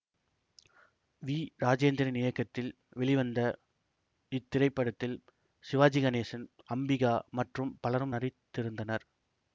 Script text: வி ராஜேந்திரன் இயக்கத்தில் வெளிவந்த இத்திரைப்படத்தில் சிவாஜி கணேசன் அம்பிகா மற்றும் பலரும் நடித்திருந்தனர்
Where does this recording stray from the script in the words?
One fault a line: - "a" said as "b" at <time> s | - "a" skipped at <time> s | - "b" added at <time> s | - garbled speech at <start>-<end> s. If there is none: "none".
none